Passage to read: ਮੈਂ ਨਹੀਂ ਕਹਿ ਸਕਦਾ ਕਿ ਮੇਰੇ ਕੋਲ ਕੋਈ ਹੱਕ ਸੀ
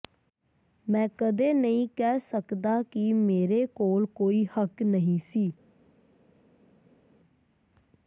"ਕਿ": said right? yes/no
yes